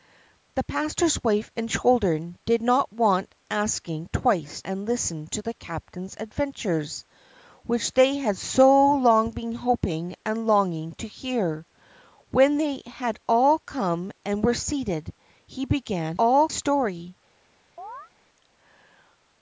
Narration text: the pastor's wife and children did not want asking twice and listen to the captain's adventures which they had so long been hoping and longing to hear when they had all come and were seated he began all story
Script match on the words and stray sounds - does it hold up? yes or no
no